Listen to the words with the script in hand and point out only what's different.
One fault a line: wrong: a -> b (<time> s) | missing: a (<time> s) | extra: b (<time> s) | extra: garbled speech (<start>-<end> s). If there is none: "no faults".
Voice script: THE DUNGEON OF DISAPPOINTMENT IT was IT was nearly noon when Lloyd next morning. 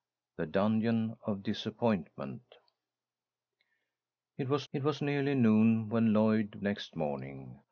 no faults